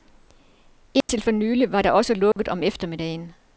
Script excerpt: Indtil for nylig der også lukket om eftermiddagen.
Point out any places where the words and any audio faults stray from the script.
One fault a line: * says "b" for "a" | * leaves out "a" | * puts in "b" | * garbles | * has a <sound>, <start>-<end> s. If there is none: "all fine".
* has a dropout, 1.0-1.1 s
* puts in "var"
* has a dropout, 2.3-2.4 s